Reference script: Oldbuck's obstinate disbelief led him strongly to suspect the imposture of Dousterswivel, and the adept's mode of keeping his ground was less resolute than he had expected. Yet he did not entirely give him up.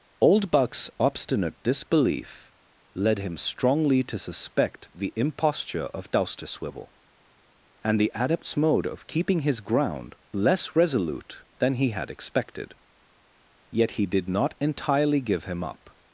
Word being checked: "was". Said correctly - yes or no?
no